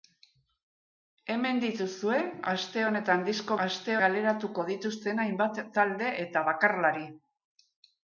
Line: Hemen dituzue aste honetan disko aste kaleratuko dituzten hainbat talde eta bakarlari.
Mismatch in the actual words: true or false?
false